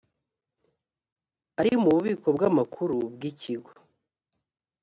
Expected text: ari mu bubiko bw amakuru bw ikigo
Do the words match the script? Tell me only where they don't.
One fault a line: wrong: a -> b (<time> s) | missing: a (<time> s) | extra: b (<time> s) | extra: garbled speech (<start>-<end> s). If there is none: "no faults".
no faults